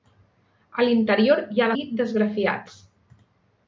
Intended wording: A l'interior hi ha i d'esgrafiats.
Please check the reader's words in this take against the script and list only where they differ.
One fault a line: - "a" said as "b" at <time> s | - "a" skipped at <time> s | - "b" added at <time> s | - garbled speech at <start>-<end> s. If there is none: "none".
none